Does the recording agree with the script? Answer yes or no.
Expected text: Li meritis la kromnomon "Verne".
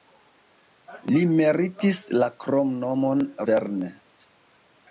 yes